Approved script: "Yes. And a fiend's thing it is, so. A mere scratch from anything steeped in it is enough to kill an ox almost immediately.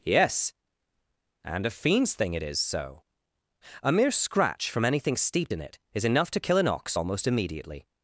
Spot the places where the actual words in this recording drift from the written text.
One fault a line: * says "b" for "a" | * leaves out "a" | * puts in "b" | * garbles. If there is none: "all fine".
all fine